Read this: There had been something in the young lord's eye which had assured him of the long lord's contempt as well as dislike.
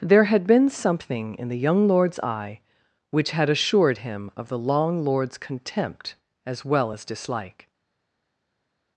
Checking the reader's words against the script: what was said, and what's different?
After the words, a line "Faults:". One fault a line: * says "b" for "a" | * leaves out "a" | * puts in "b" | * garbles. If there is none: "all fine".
There had been something in the young lord's eye which had assured him of the long lord's contempt as well as dislike.
Faults:
all fine